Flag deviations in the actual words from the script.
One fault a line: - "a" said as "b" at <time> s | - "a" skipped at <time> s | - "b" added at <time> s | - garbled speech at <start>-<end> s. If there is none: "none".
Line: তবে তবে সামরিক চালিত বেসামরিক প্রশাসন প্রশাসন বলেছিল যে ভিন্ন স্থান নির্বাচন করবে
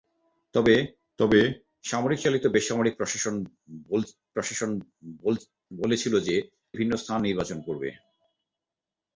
none